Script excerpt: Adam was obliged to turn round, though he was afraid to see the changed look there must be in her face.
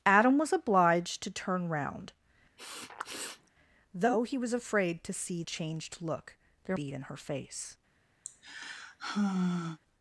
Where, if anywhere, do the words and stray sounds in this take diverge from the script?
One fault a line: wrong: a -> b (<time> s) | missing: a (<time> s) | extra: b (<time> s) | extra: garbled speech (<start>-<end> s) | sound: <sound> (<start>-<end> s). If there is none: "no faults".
sound: sniff (2.6-3.5 s)
missing: the (5.4 s)
missing: must (6.8 s)
sound: sigh (8.2-9.8 s)